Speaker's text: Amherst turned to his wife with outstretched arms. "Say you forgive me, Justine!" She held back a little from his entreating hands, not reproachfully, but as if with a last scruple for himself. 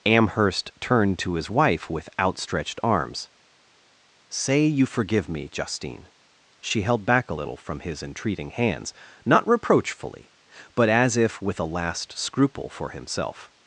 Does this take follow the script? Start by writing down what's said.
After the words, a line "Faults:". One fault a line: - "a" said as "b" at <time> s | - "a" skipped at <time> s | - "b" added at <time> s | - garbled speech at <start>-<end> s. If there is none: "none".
Amherst turned to his wife with outstretched arms. "Say you forgive me, Justine!" She held back a little from his entreating hands, not reproachfully, but as if with a last scruple for himself.
Faults:
none